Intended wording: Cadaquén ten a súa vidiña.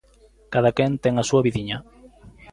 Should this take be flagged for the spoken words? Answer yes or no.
no